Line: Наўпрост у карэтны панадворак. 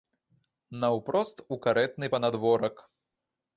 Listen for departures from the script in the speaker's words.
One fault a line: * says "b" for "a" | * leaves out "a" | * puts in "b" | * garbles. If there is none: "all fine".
all fine